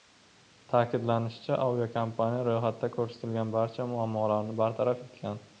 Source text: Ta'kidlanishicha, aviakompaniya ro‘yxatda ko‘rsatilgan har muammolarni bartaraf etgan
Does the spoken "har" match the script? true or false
false